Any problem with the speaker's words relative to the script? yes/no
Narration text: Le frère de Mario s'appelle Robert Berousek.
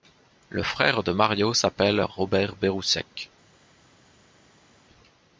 no